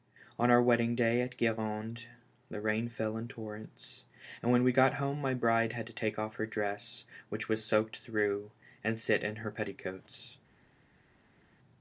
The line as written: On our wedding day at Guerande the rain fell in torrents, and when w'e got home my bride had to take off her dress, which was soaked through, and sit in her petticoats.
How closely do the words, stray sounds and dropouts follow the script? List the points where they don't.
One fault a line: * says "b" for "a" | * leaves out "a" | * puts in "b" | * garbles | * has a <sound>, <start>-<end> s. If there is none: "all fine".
all fine